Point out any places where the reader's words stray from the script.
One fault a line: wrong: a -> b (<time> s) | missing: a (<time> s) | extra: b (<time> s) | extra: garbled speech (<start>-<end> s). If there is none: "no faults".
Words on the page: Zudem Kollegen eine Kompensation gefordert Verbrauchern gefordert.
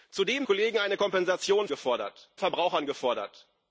no faults